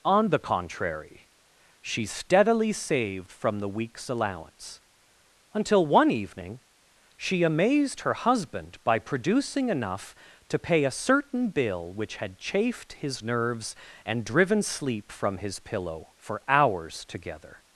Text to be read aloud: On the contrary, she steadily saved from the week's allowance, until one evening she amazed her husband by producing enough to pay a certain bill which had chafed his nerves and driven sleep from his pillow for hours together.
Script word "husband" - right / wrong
right